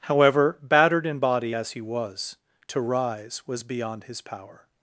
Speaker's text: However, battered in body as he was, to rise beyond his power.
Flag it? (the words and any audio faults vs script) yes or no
yes